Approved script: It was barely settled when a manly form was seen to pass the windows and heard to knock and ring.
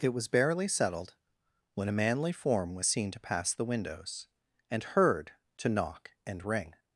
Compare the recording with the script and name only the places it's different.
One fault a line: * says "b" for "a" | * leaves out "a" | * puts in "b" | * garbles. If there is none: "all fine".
all fine